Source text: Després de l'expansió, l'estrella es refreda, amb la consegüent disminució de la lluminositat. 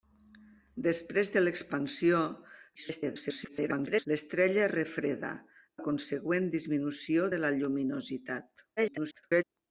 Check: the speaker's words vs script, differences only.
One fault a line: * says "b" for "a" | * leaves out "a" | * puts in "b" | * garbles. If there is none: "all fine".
* garbles
* leaves out "amb"
* garbles